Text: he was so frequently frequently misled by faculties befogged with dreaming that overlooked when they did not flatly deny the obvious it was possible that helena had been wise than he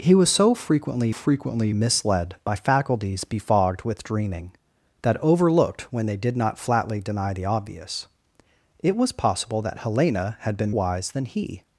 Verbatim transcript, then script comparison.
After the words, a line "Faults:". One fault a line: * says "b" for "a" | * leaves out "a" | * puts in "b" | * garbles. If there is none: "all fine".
he was so frequently frequently misled by faculties befogged with dreaming that overlooked when they did not flatly deny the obvious it was possible that helena had been wise than he
Faults:
all fine